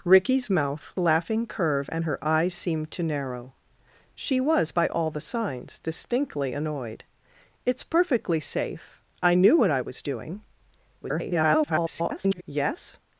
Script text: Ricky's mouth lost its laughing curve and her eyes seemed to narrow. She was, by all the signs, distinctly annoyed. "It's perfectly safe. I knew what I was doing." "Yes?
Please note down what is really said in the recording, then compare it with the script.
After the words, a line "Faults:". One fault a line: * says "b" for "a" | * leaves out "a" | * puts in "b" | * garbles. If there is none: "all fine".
Ricky's mouth laughing curve and her eyes seemed to narrow. She was, by all the signs, distinctly annoyed. "It's perfectly safe. I knew what I was doing." [garbled] "Yes?
Faults:
* leaves out "lost its"
* garbles